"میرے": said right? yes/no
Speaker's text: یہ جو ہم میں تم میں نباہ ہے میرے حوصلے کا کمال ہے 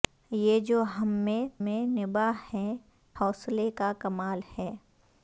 no